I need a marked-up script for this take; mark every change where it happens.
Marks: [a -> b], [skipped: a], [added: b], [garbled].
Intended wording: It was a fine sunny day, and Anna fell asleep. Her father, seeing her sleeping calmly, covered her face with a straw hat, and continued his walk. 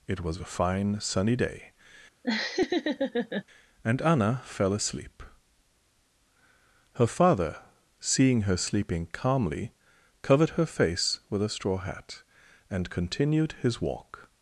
It was a fine sunny day, and Anna fell asleep. Her father, seeing her sleeping calmly, covered her face with a straw hat, and continued his walk.